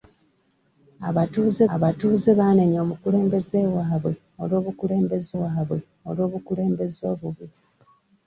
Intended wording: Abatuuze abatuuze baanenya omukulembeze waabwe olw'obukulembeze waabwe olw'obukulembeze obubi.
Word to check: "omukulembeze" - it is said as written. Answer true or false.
true